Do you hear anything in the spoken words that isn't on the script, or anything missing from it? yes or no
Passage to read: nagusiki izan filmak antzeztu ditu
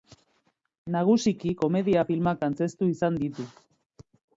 yes